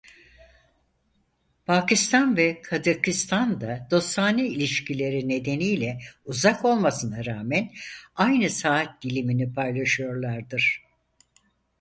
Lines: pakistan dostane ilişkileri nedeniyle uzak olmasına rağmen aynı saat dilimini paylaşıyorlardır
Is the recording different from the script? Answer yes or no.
yes